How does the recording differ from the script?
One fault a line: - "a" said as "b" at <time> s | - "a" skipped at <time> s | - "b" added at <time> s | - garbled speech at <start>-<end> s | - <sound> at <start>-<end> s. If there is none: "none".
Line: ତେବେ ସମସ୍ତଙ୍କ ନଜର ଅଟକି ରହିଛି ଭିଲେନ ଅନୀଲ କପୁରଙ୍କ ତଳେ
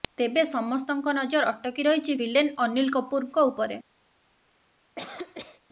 - "ତଳେ" said as "ଉପରେ" at 3.5 s
- cough at 5.0-5.6 s